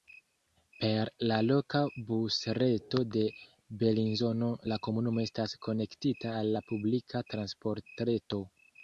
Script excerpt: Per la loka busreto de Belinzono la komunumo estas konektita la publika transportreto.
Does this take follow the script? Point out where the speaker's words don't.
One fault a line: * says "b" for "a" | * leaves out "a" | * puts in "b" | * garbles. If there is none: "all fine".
* puts in "al"